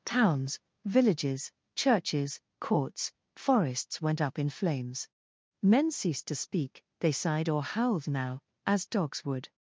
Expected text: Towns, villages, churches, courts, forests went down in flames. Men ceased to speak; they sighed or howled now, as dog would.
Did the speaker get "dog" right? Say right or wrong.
wrong